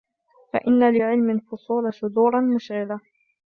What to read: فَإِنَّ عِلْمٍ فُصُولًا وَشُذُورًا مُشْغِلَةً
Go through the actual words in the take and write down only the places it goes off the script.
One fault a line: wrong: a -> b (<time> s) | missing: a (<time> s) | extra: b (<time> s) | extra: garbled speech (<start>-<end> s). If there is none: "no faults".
no faults